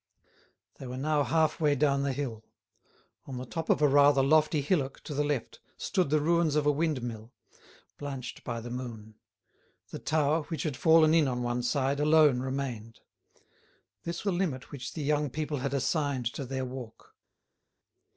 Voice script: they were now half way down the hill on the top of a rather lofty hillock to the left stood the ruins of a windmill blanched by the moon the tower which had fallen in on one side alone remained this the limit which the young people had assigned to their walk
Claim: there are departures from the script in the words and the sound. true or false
false